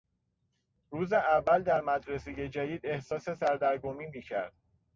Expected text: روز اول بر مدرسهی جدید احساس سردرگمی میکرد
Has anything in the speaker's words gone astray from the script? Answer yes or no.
yes